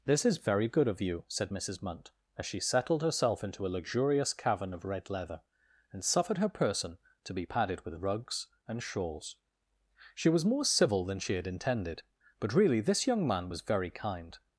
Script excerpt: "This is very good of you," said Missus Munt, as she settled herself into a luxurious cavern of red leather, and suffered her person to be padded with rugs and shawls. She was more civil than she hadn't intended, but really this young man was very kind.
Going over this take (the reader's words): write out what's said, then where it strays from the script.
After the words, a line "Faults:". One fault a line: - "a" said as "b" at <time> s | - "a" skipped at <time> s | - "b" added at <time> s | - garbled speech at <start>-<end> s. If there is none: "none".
"This is very good of you," said Missus Munt, as she settled herself into a luxurious cavern of red leather, and suffered her person to be padded with rugs and shawls. She was more civil than she had intended, but really this young man was very kind.
Faults:
- "hadn't" said as "had" at 11.3 s